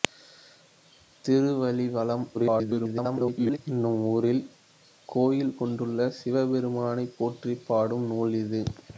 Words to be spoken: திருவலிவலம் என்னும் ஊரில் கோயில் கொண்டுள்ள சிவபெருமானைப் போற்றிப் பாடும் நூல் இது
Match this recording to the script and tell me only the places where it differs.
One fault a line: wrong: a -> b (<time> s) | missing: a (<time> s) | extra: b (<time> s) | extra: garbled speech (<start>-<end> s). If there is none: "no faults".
extra: garbled speech (2.3-3.6 s)